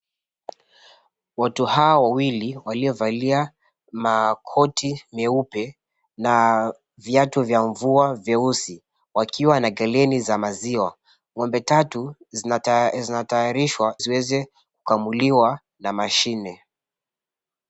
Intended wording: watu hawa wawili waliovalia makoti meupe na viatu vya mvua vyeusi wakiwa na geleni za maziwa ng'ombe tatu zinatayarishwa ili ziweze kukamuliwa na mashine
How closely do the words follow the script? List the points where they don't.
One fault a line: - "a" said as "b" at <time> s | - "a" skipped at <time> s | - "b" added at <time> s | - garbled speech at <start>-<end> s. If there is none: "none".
- "ili" skipped at 14.0 s